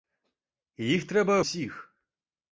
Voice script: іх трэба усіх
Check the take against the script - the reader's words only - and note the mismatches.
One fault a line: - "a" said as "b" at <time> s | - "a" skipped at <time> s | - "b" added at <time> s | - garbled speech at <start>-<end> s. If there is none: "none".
none